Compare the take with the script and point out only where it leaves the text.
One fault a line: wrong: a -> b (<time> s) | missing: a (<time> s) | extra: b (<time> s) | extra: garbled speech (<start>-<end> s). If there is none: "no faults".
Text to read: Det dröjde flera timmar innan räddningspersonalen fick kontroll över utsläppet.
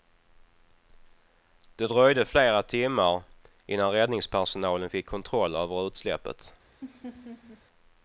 no faults